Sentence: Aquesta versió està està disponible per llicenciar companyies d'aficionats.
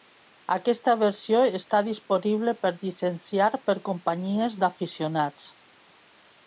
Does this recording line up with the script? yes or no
no